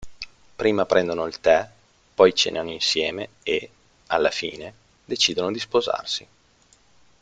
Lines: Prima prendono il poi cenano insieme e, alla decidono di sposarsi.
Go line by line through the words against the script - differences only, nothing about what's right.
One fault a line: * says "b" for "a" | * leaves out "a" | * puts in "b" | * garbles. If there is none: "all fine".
* puts in "tè"
* puts in "fine"